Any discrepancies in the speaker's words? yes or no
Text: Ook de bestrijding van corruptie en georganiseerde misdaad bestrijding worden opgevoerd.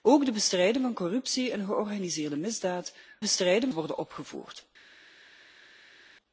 no